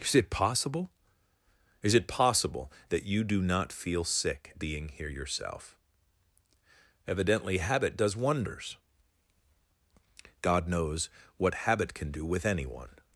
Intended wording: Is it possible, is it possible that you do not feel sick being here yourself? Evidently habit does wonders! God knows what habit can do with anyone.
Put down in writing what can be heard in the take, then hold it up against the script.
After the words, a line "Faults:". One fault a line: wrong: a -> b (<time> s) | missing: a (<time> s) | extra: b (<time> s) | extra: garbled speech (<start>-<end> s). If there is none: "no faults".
Is it possible, is it possible that you do not feel sick being here yourself? Evidently habit does wonders! God knows what habit can do with anyone.
Faults:
no faults